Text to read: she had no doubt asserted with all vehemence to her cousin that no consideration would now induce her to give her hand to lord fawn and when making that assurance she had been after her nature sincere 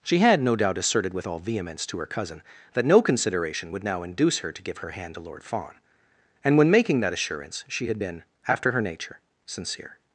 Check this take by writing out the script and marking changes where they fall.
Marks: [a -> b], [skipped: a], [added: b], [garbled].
she had no doubt asserted with all vehemence to her cousin that no consideration would now induce her to give her hand to lord fawn and when making that assurance she had been after her nature sincere